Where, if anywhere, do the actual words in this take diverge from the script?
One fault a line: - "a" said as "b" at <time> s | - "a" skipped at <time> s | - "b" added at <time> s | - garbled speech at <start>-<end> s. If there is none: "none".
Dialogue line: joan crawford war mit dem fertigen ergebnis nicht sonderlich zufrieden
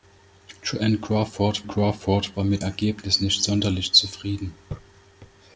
- "crawford" added at 1.7 s
- "dem fertigen" skipped at 2.6 s